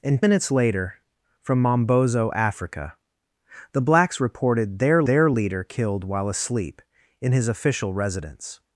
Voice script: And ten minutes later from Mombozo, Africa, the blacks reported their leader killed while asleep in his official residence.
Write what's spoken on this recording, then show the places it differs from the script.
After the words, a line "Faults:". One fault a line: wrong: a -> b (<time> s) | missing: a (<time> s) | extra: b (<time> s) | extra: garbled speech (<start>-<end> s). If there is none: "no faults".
And minutes later from Mombozo, Africa, the blacks reported their their leader killed while asleep in his official residence.
Faults:
missing: ten (0.2 s)
extra: their (5.1 s)